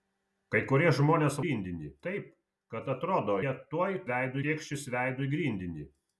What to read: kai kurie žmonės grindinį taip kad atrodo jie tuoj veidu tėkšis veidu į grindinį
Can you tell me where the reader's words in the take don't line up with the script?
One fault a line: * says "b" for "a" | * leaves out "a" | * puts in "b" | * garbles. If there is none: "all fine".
all fine